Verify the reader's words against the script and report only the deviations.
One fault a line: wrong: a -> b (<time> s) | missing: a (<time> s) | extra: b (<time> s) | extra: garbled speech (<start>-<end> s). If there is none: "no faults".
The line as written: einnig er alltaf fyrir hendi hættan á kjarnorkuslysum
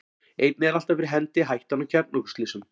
no faults